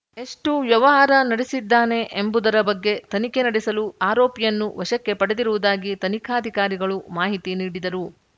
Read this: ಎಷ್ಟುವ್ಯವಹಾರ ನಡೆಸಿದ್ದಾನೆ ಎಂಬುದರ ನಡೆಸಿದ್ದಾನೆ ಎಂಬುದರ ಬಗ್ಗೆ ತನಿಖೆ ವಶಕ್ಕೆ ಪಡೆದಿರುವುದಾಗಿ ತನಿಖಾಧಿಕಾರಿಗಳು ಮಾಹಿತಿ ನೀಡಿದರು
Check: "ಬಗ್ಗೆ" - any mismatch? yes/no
yes